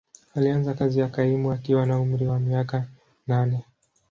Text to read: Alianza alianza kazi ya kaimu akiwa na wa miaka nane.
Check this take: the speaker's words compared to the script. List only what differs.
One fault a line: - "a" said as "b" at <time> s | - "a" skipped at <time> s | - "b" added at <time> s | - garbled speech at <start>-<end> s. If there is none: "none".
- "alianza" skipped at 0.7 s
- "umri" added at 2.0 s